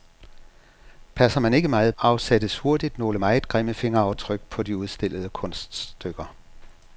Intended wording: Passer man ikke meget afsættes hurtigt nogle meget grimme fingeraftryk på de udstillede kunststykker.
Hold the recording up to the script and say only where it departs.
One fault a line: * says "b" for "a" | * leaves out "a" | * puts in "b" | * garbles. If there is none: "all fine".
all fine